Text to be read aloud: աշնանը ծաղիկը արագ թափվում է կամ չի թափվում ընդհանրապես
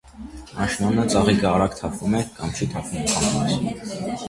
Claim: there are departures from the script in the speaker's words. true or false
false